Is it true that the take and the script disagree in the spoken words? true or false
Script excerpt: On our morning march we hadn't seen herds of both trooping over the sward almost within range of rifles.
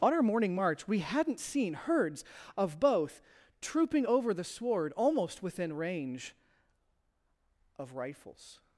false